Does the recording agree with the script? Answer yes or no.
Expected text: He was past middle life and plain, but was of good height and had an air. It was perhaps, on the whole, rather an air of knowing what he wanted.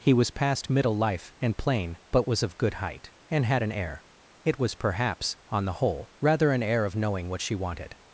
no